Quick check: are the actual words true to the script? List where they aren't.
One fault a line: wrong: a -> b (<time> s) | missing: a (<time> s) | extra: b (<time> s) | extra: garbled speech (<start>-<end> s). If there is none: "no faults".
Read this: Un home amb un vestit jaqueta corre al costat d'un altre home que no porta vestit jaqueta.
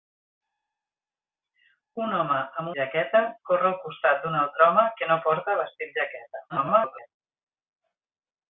missing: un vestit (2.7 s)
extra: garbled speech (6.5-7.1 s)